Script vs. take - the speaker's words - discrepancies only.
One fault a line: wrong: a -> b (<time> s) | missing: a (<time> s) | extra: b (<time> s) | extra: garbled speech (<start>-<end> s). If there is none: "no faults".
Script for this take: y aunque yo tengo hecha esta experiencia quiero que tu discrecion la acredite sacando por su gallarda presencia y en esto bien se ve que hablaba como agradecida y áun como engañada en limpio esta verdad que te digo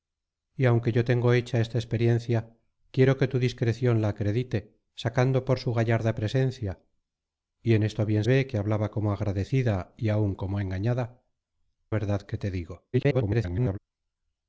missing: se (8.2 s)
missing: en limpio esta (11.2 s)
extra: garbled speech (12.9-13.8 s)